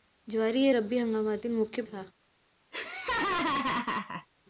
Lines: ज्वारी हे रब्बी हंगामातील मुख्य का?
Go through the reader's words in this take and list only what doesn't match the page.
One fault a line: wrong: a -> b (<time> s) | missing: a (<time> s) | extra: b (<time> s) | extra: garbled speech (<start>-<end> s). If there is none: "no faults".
no faults